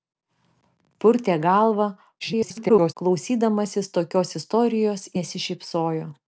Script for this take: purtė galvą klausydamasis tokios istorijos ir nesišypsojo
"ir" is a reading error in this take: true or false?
true